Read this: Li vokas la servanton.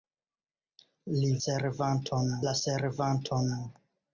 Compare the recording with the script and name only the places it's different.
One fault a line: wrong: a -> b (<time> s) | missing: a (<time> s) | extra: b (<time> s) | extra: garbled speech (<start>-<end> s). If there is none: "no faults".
wrong: vokas -> servanton (1.4 s)